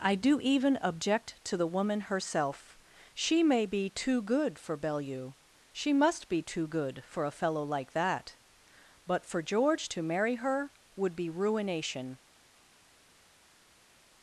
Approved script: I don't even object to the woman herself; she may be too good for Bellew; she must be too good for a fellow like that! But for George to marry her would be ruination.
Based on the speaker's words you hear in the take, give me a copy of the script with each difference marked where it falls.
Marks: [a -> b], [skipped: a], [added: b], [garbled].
I [don't -> do] even object to the woman herself; she may be too good for Bellew; she must be too good for a fellow like that! But for George to marry her would be ruination.